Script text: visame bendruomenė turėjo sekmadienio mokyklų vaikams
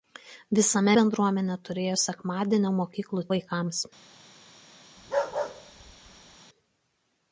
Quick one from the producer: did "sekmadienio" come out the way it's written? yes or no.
yes